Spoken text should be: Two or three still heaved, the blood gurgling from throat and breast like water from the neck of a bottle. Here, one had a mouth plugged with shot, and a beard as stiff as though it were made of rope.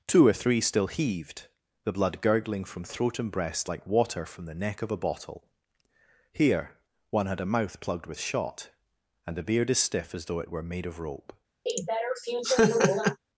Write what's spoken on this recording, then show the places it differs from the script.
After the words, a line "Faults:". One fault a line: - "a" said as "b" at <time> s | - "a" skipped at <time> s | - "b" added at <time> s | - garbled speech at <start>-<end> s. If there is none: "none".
Two or three still heaved, the blood gurgling from throat and breast like water from the neck of a bottle. Here, one had a mouth plugged with shot, and the beard as stiff as though it were made of rope.
Faults:
- "a" said as "the" at 9.4 s